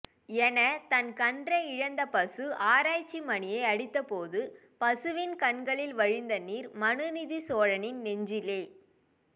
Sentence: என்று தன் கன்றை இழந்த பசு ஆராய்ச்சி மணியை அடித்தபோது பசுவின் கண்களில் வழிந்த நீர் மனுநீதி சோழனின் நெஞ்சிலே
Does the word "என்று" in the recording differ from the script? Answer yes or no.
yes